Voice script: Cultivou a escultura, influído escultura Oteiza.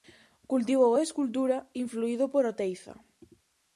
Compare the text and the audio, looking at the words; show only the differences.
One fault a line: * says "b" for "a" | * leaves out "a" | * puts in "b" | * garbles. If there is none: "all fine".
* says "por" for "escultura"